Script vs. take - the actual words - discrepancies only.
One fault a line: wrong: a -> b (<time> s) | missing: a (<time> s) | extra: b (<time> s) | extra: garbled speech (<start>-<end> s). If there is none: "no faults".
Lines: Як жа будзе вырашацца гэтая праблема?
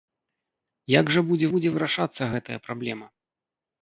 extra: будзе (1.5 s)